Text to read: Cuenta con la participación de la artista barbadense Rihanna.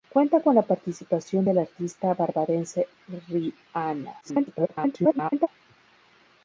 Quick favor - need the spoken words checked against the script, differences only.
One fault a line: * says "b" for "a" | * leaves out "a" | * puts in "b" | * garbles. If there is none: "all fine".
* garbles